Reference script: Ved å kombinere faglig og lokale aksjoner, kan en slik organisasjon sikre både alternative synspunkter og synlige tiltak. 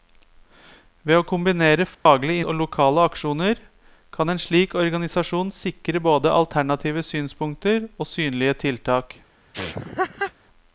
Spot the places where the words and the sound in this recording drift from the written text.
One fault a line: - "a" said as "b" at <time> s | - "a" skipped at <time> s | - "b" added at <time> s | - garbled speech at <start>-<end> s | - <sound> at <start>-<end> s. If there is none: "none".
- dropout at 1.9-2.1 s
- laugh at 9.5-10.3 s